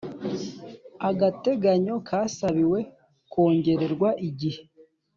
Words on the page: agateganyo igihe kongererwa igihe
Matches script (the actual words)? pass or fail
fail